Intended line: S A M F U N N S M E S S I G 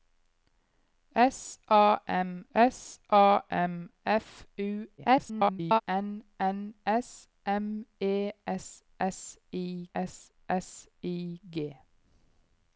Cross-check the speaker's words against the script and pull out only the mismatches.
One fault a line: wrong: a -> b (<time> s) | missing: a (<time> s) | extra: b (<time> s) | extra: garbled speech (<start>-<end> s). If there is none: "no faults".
extra: s A M (2.5 s)
extra: garbled speech (5.0-5.8 s)
extra: S S I (9.9 s)